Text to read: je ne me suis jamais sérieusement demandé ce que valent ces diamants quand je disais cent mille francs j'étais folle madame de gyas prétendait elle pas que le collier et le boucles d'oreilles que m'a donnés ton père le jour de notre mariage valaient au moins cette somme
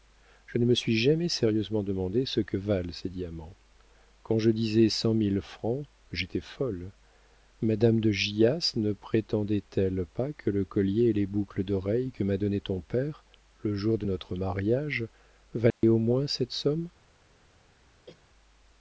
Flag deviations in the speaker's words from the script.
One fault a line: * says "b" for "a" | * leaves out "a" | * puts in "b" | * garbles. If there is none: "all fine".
* puts in "ne"
* says "les" for "le"